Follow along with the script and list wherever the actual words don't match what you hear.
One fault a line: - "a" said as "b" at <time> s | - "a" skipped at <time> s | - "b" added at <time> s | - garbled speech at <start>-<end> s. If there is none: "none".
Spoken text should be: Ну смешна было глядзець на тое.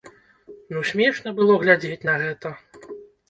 - "тое" said as "гэта" at 2.2 s